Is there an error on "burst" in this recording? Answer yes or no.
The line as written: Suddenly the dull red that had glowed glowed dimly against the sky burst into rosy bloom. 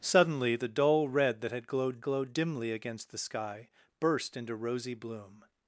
no